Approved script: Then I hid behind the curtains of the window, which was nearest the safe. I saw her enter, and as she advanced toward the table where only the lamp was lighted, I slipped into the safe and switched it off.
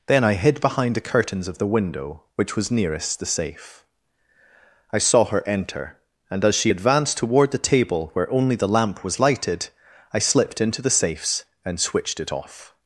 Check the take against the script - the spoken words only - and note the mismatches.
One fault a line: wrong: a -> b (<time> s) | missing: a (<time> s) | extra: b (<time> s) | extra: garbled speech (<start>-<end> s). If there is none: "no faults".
wrong: safe -> safes (10.9 s)